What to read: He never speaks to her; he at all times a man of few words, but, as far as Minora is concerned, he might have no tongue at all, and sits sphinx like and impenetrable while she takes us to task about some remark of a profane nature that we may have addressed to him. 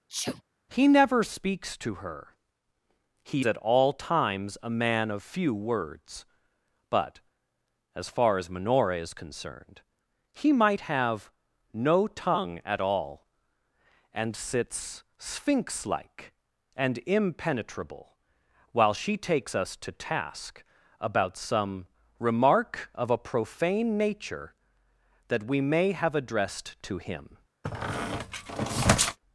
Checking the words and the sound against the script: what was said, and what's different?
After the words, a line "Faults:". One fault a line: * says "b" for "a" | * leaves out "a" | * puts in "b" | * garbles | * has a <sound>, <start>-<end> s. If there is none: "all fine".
He never speaks to her; he at all times a man of few words, but, as far as Minora is concerned, he might have no tongue at all, and sits sphinx like and impenetrable while she takes us to task about some remark of a profane nature that we may have addressed to him.
Faults:
* has a sneeze, 0.1-0.4 s
* has a squeak, 27.6-29.2 s